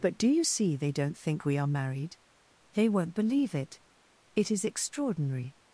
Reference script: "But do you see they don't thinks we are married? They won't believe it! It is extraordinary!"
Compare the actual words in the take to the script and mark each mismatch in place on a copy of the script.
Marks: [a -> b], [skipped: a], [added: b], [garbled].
"But do you see they don't [thinks -> think] we are married? They won't believe it! It is extraordinary!"